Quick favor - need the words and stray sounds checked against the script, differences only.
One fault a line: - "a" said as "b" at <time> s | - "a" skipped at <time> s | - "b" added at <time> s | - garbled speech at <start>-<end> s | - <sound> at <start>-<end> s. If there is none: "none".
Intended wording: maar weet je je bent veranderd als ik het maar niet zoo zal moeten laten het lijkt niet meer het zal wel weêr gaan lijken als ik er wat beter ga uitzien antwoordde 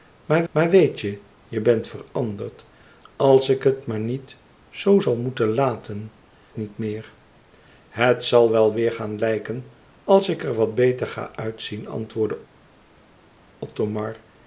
- "maar" added at 0.5 s
- "het lijkt" skipped at 6.1 s